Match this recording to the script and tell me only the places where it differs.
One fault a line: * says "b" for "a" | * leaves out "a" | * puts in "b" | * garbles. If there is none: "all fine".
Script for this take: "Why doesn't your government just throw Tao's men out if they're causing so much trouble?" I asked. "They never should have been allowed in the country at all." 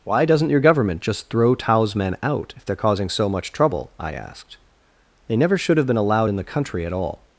all fine